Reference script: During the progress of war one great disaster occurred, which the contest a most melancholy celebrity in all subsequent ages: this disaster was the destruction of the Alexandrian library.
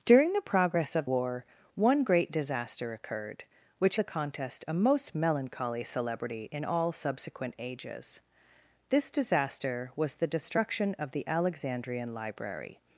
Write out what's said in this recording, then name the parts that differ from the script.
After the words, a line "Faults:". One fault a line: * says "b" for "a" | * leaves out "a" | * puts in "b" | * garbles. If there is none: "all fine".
During the progress of war one great disaster occurred, which the contest a most melancholy celebrity in all subsequent ages: this disaster was the destruction of the Alexandrian library.
Faults:
all fine